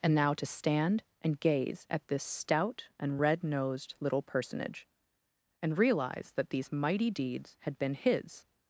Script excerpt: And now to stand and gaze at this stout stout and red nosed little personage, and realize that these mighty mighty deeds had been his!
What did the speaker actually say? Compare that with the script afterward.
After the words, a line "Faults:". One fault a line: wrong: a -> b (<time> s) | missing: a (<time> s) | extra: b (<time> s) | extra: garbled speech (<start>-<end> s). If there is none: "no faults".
And now to stand and gaze at this stout and red nosed little personage, and realize that these mighty deeds had been his!
Faults:
missing: stout (2.9 s)
missing: mighty (7.1 s)